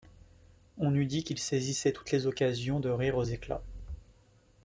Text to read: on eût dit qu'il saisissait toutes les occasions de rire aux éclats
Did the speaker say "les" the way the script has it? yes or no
yes